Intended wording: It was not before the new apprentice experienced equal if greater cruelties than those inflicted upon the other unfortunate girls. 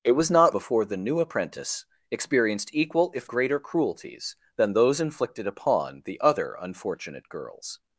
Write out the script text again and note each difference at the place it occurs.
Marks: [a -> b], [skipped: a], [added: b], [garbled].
It was not before the new apprentice experienced equal if greater cruelties than those inflicted upon the other unfortunate girls.